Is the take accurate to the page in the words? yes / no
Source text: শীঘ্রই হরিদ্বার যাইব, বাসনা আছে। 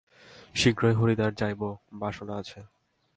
yes